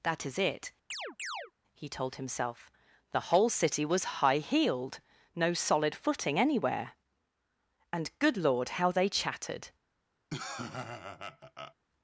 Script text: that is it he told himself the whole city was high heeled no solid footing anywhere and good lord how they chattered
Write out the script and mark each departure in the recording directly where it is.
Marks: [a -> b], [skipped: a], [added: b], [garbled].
that is it he told himself the whole city was high heeled no solid footing anywhere and good lord how they chattered